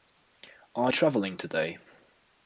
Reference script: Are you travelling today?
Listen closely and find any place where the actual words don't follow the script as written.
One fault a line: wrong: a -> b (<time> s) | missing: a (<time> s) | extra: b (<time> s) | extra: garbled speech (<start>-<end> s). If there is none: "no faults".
missing: you (0.9 s)